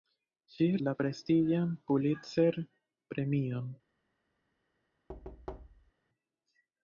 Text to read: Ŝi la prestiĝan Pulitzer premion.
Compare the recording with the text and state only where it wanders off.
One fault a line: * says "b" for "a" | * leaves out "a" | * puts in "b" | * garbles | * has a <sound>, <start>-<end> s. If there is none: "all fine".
* has a thud, 5.1-5.9 s